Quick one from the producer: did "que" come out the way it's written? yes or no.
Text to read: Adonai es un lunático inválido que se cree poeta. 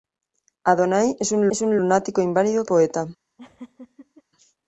no